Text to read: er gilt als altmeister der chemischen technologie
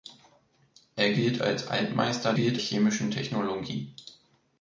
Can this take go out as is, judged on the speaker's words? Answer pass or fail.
fail